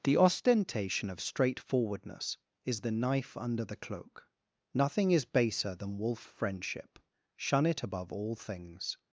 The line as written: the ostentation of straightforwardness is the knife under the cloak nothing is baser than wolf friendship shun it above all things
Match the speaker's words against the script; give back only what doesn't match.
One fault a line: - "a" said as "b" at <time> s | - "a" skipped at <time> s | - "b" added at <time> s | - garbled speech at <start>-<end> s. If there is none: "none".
none